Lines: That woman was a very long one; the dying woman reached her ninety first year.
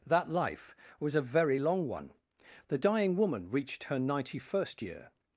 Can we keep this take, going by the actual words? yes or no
no